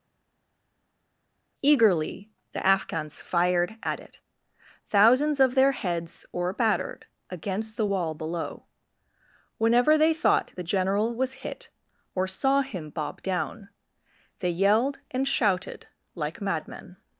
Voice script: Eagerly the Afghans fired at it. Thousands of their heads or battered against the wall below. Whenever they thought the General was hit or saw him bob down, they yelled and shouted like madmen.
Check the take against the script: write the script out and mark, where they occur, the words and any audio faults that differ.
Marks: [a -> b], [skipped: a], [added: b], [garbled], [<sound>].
Eagerly the Afghans fired at it. Thousands of their heads or battered against the wall below. Whenever they thought the General was hit or saw him bob down, they yelled and shouted like madmen.